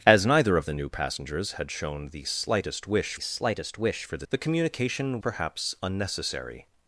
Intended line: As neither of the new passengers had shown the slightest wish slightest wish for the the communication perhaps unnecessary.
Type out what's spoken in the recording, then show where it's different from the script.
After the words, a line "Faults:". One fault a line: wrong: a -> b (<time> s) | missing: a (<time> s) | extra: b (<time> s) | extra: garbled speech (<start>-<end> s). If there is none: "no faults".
As neither of the new passengers had shown the slightest wish slightest wish for the the communication perhaps unnecessary.
Faults:
no faults